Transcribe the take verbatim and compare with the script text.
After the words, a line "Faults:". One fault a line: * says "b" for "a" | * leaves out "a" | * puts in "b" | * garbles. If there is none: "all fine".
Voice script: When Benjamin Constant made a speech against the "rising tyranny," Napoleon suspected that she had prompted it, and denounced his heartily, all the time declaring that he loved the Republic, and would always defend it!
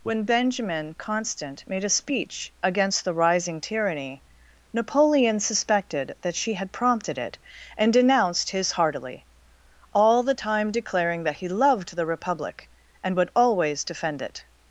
When Benjamin Constant made a speech against the "rising tyranny," Napoleon suspected that she had prompted it, and denounced his heartily, all the time declaring that he loved the Republic, and would always defend it!
Faults:
all fine